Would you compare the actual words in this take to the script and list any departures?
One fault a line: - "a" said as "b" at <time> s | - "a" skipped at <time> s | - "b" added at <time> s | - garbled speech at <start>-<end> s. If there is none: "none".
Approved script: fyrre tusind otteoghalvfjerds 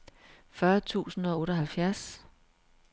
- "og" added at 1.2 s